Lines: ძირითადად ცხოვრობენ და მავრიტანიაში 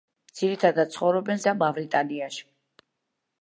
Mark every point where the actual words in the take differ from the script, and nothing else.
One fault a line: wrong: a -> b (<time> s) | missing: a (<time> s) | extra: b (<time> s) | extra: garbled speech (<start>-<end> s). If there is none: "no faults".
no faults